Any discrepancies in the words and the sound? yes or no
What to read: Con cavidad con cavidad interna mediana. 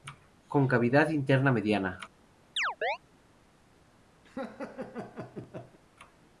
yes